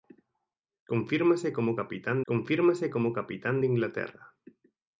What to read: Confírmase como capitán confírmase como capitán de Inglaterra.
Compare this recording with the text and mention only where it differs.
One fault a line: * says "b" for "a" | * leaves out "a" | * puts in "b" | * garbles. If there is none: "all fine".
all fine